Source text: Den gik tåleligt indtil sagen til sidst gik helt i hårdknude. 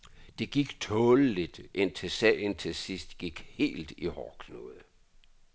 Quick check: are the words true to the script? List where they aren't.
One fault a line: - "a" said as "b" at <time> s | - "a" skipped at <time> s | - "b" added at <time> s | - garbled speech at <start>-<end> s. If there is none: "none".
- "Den" said as "Det" at 0.4 s